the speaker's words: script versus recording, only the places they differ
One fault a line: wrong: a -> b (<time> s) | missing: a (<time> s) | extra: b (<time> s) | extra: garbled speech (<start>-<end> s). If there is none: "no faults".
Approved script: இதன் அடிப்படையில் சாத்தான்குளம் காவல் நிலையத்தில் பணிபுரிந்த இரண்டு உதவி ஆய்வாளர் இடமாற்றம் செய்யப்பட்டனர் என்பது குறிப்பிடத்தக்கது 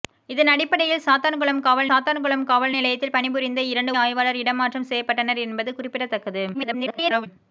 extra: சாத்தான்குளம் காவல் (1.9 s)
missing: உதவி (4.0 s)
extra: garbled speech (6.5-7.3 s)